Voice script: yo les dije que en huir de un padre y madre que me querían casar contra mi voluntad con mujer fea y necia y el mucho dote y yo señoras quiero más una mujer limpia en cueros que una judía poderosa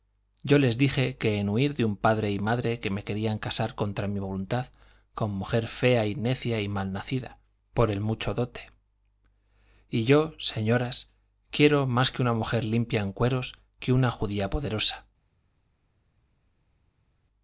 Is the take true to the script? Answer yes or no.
no